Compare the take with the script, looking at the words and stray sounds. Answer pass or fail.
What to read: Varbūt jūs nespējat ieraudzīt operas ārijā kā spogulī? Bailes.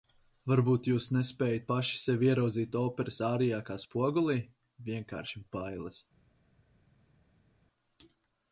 fail